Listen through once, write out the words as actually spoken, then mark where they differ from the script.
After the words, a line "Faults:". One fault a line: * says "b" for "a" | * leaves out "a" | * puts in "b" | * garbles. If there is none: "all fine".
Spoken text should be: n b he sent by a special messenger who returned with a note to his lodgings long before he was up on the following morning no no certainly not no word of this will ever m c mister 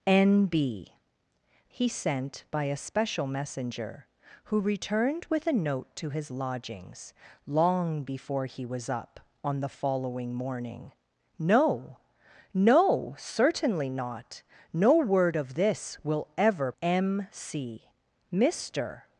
n b he sent by a special messenger who returned with a note to his lodgings long before he was up on the following morning no no certainly not no word of this will ever m c mister
Faults:
all fine